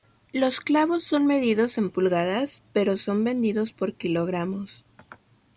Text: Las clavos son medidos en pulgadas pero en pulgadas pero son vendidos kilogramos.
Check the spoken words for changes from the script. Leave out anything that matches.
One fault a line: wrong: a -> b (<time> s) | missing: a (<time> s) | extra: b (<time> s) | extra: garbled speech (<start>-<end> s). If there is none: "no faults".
wrong: Las -> Los (0.3 s)
missing: en pulgadas pero (3.0 s)
extra: por (3.7 s)